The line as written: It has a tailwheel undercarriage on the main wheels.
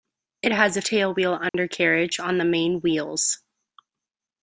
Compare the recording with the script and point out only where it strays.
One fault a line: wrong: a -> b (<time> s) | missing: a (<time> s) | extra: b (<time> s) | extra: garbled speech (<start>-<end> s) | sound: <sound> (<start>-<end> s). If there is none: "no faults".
sound: dropout (1.5-1.5 s)